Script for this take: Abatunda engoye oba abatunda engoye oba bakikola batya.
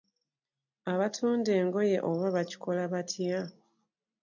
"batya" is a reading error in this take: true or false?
false